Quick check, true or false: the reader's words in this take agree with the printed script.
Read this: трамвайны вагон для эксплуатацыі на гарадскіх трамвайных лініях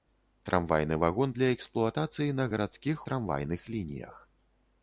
true